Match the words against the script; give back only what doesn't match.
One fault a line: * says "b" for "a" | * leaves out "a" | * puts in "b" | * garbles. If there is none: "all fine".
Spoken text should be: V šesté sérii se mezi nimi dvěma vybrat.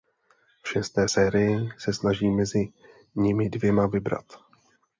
* puts in "snaží"